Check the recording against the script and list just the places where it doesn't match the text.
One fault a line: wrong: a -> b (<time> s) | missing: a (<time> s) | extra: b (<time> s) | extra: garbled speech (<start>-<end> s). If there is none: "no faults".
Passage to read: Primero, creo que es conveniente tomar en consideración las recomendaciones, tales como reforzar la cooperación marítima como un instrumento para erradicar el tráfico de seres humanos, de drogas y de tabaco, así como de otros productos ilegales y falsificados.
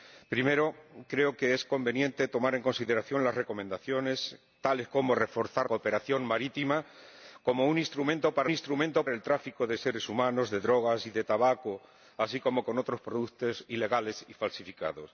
missing: la (5.7 s)
wrong: erradicar -> instrumento (8.5 s)